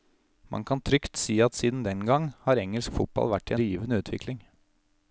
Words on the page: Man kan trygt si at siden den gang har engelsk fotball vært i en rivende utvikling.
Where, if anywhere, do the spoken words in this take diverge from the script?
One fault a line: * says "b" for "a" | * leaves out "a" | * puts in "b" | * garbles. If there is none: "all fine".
* leaves out "en"